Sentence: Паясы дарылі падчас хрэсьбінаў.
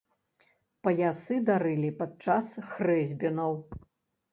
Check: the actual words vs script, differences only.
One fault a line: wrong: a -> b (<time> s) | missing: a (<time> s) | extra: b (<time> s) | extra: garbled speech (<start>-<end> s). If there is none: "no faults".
no faults